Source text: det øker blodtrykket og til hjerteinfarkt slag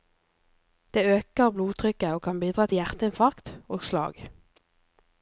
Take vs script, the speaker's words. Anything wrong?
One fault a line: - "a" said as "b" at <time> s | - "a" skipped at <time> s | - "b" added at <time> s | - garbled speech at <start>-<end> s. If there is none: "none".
- "kan bidra" added at 2.2 s
- "og" added at 3.7 s